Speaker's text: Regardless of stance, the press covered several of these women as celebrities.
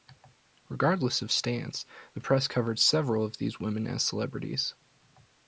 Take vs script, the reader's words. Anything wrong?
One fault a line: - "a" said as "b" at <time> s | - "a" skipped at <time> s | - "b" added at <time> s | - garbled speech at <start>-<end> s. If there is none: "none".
none